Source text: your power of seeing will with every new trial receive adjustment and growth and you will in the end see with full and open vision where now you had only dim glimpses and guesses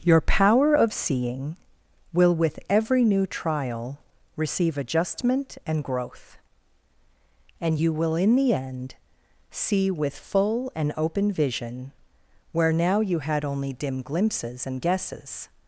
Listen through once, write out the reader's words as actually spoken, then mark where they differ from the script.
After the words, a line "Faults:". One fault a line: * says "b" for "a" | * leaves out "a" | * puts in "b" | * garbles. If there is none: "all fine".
your power of seeing will with every new trial receive adjustment and growth and you will in the end see with full and open vision where now you had only dim glimpses and guesses
Faults:
all fine